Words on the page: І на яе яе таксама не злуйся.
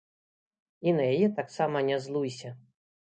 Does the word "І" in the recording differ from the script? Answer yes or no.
no